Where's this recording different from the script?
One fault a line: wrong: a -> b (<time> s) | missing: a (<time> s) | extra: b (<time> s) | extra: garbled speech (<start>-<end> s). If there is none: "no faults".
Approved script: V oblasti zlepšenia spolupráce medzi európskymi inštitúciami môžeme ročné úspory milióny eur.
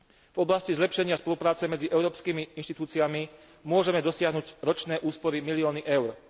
extra: dosiahnuť (4.0 s)